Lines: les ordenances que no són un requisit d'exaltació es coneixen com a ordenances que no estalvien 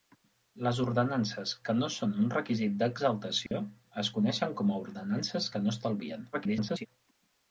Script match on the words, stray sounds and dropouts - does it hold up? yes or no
no